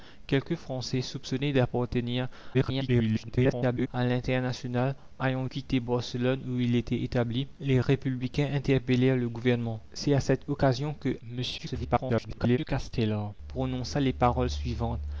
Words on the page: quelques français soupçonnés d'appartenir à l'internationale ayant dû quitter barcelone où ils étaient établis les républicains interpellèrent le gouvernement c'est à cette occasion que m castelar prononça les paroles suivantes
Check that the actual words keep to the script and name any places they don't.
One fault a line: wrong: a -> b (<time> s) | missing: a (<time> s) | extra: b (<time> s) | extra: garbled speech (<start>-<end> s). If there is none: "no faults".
extra: garbled speech (2.5-3.9 s)
missing: dû (5.4 s)
extra: garbled speech (11.6-12.6 s)